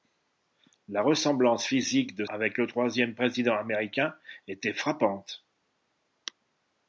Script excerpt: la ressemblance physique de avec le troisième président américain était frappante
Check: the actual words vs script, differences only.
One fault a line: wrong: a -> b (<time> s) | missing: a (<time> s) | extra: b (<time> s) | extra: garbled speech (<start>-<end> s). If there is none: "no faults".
no faults